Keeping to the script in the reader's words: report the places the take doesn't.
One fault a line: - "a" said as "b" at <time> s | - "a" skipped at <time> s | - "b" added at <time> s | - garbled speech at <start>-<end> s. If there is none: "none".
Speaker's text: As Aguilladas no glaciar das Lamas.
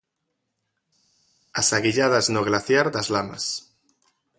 none